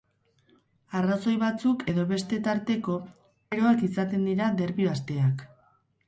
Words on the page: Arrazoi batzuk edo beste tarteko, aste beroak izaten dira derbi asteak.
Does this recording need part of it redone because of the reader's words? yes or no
yes